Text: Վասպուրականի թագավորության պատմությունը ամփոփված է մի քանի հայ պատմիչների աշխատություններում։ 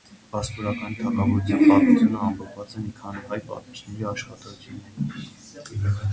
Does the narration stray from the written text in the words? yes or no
no